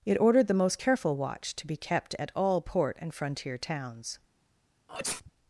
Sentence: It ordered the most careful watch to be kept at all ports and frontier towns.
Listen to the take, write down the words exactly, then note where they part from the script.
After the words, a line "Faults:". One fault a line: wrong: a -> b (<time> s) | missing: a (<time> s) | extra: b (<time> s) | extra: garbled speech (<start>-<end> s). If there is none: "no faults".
It ordered the most careful watch to be kept at all port and frontier towns.
Faults:
wrong: ports -> port (2.6 s)